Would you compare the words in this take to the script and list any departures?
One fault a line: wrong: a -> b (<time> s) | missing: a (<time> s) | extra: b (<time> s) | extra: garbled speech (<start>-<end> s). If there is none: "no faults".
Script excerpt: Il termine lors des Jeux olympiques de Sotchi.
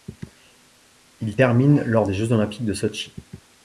no faults